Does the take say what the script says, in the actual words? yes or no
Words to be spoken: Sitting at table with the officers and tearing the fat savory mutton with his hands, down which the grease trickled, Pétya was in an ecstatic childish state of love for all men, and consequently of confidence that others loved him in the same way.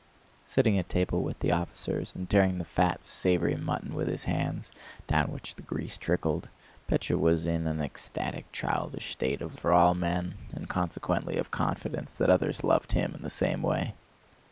no